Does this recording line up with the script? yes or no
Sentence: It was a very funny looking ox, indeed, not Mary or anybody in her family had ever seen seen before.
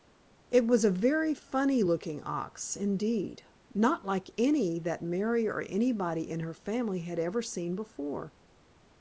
no